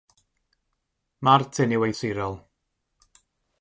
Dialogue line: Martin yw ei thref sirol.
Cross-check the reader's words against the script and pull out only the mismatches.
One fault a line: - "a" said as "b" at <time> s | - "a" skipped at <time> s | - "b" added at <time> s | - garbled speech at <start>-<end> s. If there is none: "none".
- "thref" skipped at 1.9 s